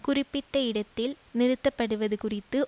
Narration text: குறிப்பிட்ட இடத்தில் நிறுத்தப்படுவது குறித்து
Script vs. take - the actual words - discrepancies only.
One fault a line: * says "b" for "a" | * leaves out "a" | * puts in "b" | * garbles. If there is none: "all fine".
all fine